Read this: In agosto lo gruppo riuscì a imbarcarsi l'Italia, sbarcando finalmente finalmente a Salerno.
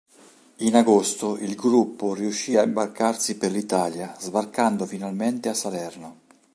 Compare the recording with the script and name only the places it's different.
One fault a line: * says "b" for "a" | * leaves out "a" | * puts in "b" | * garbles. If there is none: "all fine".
* says "il" for "lo"
* puts in "per"
* leaves out "finalmente"